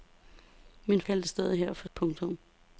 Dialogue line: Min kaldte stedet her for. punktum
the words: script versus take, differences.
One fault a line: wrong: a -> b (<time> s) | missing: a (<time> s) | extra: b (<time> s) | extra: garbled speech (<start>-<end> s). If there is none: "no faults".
no faults